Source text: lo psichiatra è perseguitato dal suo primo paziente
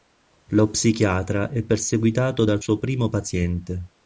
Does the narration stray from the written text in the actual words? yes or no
no